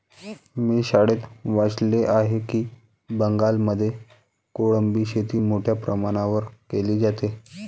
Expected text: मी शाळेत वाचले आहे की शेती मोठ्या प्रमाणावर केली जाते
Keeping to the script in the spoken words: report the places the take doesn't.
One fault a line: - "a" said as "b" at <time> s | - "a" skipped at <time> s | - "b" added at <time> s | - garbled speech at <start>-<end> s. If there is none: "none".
- "बंगालमध्ये कोळंबी" added at 3.1 s